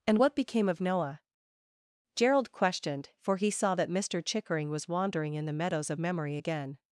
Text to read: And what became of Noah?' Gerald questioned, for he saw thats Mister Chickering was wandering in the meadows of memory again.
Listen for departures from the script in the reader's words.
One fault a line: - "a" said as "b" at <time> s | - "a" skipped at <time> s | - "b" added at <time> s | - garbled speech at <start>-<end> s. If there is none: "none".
- "thats" said as "that" at 3.7 s